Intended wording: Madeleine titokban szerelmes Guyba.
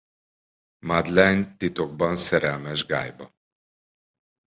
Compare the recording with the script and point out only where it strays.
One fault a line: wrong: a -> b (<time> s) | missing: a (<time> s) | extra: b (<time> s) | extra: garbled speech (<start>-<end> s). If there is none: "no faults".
no faults